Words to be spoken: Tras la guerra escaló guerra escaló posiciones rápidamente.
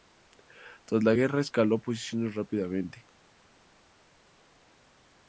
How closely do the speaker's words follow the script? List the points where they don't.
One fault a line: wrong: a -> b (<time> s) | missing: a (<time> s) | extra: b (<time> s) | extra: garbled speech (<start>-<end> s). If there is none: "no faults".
missing: guerra escaló (1.8 s)